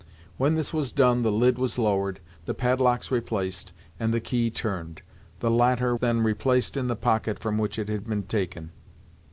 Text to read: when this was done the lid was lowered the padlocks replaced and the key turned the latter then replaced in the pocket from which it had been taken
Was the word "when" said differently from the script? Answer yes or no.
no